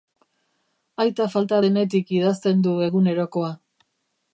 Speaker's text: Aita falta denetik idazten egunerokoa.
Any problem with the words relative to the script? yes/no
yes